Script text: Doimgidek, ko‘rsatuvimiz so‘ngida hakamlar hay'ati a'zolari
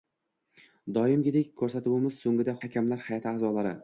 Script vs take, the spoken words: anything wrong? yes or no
no